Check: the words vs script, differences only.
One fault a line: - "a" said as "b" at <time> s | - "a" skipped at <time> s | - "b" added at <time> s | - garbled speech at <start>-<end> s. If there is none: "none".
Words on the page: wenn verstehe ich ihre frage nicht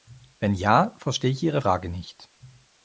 - "ja" added at 0.6 s